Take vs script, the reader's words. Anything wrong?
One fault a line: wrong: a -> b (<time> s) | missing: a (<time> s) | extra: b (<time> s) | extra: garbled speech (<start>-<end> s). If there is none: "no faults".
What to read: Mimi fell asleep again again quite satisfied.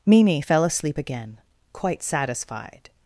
missing: again (1.4 s)